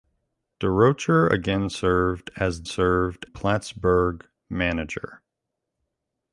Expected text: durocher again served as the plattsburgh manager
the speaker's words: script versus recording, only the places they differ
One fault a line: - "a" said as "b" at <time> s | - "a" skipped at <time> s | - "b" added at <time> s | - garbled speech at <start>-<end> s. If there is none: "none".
- "the" said as "served" at 2.6 s